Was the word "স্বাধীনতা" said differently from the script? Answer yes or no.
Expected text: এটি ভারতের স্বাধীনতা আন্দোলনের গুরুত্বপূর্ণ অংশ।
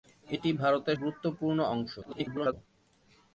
yes